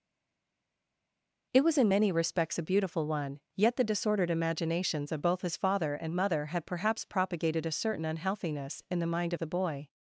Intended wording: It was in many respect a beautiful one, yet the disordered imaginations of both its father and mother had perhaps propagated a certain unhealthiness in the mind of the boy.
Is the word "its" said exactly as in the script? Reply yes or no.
no